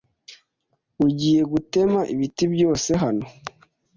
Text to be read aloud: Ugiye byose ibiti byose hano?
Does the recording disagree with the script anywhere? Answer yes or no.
yes